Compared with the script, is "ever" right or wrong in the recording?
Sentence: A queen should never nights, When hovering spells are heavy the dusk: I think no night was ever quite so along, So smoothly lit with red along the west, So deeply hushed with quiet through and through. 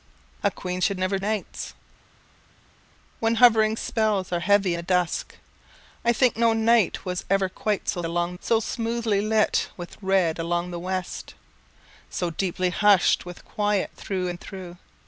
right